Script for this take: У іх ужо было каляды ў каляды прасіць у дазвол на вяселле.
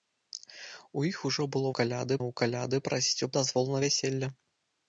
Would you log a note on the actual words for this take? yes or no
no